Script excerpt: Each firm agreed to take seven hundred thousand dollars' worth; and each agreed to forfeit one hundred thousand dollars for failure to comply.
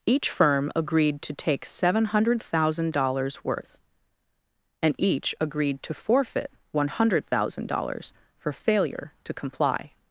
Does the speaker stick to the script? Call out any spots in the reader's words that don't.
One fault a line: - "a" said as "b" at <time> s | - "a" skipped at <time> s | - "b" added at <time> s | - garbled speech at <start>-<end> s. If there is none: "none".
none